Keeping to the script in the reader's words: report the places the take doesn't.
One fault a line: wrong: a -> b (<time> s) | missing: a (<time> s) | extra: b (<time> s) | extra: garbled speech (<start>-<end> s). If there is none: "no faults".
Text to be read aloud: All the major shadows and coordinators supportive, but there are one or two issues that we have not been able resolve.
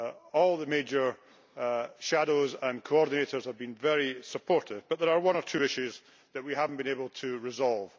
extra: have been very (3.5 s)
extra: to (7.1 s)